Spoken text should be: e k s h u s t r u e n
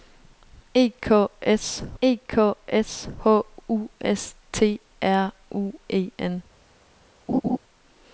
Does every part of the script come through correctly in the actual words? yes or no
no